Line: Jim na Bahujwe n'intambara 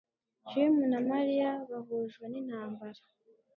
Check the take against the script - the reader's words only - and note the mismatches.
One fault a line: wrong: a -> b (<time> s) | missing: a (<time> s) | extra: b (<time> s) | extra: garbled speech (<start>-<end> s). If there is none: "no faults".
extra: Mariya (1.1 s)